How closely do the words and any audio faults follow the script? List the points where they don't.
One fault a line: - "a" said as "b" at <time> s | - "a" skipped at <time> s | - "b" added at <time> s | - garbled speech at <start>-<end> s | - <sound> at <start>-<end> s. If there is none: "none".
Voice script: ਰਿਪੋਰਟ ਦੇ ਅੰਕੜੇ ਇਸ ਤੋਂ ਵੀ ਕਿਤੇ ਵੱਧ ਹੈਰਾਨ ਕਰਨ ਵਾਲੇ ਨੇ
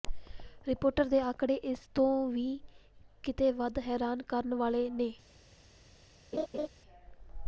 - laugh at 6.3-6.7 s